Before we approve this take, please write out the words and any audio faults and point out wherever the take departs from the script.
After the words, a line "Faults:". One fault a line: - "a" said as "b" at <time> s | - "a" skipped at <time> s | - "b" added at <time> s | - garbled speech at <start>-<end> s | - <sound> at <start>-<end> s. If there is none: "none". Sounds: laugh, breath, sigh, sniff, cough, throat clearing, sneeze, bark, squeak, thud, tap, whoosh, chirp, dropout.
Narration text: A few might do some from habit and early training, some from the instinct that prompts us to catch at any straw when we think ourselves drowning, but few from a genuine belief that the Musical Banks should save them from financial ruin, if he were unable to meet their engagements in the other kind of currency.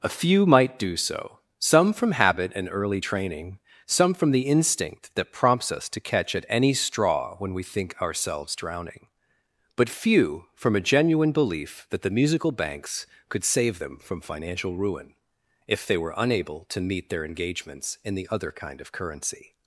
A few might do so, some from habit and early training, some from the instinct that prompts us to catch at any straw when we think ourselves drowning, but few from a genuine belief that the Musical Banks could save them from financial ruin, if they were unable to meet their engagements in the other kind of currency.
Faults:
- "so" added at 1.0 s
- "should" said as "could" at 13.3 s
- "he" said as "they" at 15.9 s